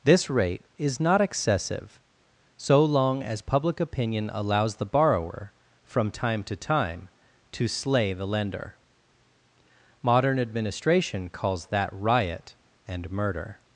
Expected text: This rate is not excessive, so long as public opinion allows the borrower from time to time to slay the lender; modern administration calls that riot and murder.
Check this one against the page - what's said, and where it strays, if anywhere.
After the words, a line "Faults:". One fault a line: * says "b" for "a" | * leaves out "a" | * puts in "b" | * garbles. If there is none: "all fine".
This rate is not excessive, so long as public opinion allows the borrower from time to time to slay the lender; modern administration calls that riot and murder.
Faults:
all fine